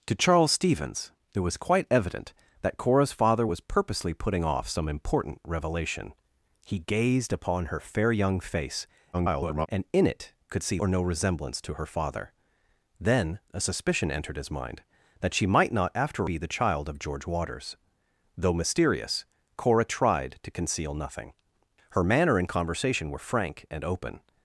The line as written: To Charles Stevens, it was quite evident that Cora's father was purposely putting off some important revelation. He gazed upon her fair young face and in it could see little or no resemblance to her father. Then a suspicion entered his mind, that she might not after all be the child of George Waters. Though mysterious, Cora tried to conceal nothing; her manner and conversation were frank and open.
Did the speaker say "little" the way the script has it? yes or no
no